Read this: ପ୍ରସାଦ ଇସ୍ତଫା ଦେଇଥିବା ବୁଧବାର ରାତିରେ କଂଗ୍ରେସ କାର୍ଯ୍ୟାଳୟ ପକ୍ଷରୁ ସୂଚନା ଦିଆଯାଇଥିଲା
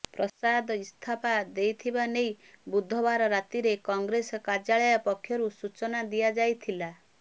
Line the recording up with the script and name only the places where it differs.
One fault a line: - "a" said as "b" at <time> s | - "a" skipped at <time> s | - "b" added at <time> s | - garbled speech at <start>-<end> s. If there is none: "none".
- "ନେଇ" added at 2.1 s